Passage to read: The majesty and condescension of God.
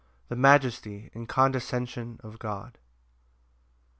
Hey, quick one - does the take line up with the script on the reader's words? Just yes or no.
yes